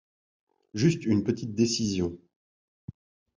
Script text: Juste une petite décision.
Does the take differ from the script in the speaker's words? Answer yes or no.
no